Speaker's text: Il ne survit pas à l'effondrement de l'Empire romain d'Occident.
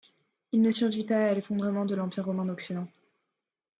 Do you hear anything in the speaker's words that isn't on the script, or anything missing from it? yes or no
no